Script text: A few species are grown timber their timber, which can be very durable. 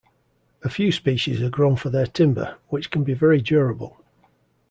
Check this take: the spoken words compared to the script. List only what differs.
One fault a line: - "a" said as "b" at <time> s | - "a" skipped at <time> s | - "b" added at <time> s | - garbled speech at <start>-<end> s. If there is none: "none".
- "timber" said as "for" at 1.8 s